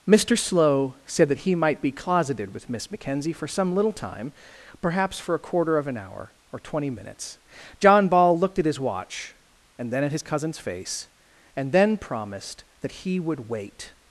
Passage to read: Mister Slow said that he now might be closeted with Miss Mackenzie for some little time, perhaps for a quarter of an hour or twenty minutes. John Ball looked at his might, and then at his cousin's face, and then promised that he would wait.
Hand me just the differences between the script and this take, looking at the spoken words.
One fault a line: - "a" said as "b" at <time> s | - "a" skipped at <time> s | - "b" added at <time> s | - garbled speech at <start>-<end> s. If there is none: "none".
- "now" skipped at 1.5 s
- "might" said as "watch" at 8.8 s